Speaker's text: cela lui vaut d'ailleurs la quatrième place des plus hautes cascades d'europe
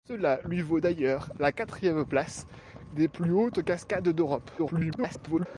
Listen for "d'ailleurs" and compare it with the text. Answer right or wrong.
right